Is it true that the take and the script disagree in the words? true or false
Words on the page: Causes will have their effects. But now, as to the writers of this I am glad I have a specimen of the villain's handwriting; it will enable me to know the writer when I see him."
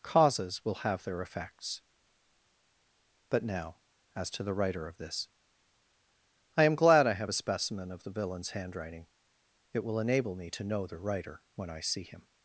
true